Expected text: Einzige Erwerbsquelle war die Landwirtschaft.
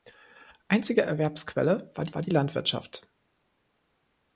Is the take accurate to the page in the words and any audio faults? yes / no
no